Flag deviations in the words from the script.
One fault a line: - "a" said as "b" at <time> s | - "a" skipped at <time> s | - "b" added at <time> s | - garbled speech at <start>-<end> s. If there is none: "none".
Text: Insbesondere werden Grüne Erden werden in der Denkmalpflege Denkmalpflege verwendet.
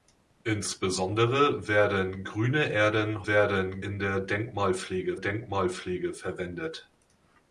none